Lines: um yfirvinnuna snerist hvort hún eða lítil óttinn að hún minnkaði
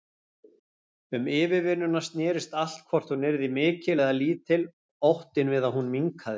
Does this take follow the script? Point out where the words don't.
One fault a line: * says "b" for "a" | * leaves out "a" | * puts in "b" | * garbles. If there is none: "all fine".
* puts in "allt"
* puts in "yrði mikil"
* puts in "við"